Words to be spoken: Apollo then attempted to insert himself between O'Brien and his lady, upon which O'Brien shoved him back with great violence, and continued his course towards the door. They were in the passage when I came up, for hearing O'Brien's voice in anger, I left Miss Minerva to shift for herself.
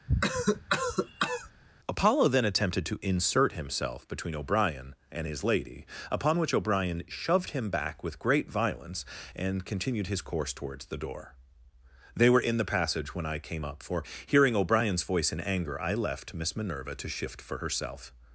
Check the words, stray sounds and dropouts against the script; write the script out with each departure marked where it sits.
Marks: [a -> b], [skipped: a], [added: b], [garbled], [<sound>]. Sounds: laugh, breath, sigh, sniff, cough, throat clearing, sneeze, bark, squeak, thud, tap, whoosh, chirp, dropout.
[cough] Apollo then attempted to insert himself between O'Brien and his lady, upon which O'Brien shoved him back with great violence, and continued his course towards the door. They were in the passage when I came up, for hearing O'Brien's voice in anger, I left Miss Minerva to shift for herself.